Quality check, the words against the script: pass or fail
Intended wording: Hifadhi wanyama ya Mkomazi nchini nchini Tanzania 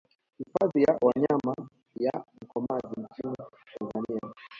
fail